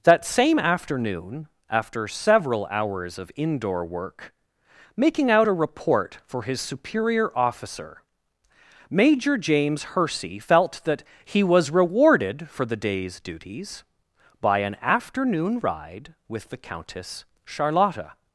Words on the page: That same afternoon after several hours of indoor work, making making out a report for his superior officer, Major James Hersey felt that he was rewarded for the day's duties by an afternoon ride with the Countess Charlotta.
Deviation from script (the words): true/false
true